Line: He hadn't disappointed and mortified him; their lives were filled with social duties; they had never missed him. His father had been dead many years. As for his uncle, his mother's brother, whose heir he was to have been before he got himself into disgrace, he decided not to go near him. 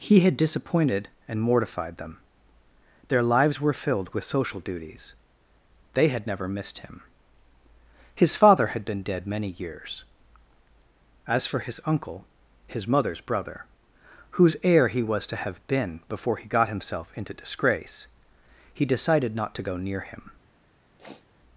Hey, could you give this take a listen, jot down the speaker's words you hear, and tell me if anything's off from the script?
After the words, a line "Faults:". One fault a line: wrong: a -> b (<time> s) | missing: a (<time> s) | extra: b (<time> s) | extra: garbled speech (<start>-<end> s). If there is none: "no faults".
He had disappointed and mortified them; their lives were filled with social duties; they had never missed him. His father had been dead many years. As for his uncle, his mother's brother, whose heir he was to have been before he got himself into disgrace, he decided not to go near him.
Faults:
wrong: hadn't -> had (0.2 s)
wrong: him -> them (2.0 s)